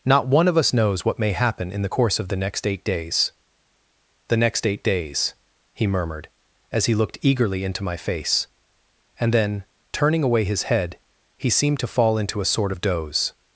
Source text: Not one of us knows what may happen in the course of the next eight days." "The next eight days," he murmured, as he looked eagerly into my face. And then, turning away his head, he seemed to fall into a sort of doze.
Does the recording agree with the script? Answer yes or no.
yes